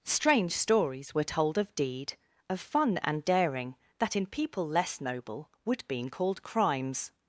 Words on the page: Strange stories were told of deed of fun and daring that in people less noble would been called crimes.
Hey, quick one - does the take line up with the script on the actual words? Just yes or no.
yes